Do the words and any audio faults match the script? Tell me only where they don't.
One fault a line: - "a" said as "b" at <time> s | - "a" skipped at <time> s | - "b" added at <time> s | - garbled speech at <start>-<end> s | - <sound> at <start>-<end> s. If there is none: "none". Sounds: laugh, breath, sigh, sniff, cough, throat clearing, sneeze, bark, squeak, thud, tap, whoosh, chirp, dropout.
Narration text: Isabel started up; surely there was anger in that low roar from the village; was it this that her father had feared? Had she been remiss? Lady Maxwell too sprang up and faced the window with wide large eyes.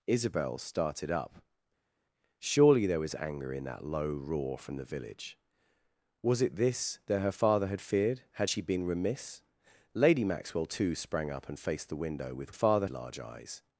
- "wide" said as "father" at 12.5 s